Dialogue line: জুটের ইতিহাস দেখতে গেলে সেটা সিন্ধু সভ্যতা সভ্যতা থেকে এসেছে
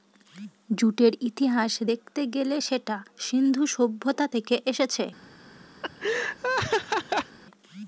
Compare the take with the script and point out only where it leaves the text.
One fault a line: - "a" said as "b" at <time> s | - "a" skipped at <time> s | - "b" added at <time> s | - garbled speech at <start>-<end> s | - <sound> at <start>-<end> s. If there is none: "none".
- "সভ্যতা" skipped at 4.2 s
- laugh at 5.8-7.4 s